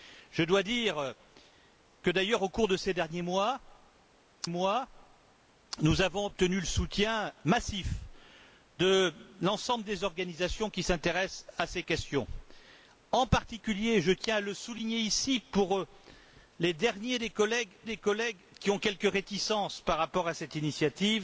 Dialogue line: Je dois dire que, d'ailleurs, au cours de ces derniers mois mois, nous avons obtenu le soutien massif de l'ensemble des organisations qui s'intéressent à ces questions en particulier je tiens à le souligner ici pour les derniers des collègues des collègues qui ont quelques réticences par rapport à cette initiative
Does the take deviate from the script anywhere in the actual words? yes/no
no